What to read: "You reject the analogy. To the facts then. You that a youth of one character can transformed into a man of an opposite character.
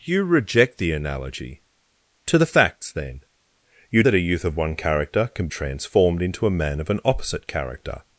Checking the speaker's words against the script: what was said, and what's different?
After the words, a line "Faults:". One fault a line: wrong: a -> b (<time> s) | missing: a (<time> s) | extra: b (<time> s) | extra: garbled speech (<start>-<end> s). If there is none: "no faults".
"You reject the analogy. To the facts then. You that a youth of one character can transformed into a man of an opposite character.
Faults:
no faults